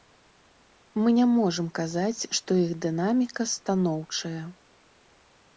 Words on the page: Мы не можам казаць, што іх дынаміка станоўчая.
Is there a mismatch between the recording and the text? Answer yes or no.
no